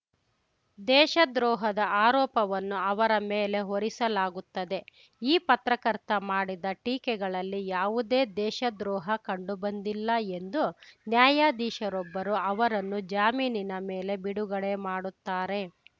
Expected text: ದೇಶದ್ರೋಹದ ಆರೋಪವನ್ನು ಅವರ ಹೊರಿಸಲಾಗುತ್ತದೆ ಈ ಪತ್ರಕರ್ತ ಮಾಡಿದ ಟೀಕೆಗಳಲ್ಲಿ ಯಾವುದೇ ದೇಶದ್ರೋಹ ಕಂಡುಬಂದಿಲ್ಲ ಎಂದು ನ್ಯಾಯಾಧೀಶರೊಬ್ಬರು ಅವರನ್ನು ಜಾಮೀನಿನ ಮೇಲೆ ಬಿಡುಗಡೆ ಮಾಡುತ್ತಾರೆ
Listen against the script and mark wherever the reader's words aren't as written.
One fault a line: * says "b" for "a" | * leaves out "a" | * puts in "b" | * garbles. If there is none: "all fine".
* puts in "ಮೇಲೆ"